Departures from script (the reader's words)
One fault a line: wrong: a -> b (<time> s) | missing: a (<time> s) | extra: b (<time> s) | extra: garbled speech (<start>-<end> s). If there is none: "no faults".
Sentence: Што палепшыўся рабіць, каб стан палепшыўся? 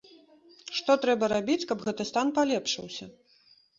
wrong: палепшыўся -> трэба (1.0 s)
extra: гэты (1.9 s)